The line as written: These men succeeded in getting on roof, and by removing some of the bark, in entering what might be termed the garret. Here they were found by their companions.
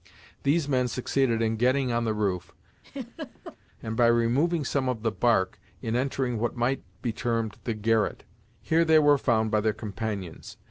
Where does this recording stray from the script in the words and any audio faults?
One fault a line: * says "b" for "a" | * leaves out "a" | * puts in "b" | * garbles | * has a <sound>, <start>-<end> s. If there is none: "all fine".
* puts in "the"
* has a laugh, 2.8-3.6 s